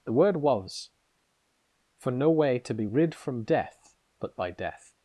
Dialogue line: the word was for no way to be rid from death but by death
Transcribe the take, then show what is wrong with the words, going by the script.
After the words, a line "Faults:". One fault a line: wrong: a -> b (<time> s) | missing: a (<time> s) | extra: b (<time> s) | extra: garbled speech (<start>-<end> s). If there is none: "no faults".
the word was for no way to be rid from death but by death
Faults:
no faults